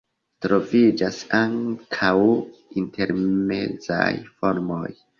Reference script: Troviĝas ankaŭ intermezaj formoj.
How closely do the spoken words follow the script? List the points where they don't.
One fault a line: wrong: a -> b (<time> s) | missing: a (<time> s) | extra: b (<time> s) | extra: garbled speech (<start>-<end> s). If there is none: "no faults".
no faults